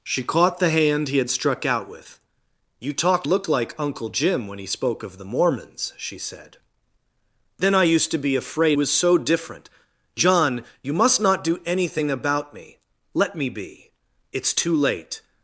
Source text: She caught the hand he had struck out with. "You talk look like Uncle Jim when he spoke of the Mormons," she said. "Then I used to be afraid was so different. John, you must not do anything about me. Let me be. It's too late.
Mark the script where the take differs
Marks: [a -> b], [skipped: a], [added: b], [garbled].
She caught the hand he had struck out with. "You talk look like Uncle Jim when he spoke of the Mormons," she said. "Then I used to be afraid was so different. John, you must not do anything about me. Let me be. It's too late.